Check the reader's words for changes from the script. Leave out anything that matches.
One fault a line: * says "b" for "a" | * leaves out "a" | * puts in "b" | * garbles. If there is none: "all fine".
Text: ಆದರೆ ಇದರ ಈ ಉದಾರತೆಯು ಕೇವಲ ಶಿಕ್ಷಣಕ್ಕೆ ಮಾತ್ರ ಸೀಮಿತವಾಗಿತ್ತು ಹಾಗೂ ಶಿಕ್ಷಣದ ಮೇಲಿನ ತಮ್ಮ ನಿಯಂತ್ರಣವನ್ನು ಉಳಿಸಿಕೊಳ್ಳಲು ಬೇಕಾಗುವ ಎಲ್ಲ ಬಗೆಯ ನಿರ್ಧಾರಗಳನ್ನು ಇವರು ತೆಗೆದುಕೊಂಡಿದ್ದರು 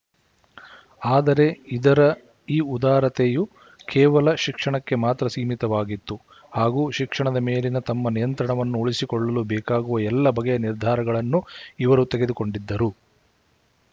all fine